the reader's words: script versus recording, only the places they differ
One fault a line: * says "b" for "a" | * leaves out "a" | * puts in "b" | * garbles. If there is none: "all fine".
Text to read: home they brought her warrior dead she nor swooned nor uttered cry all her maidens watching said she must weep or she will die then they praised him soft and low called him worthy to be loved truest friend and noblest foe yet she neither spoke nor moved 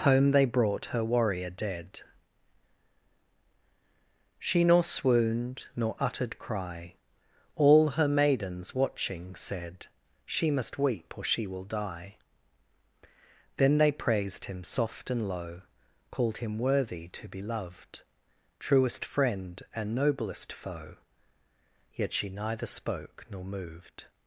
all fine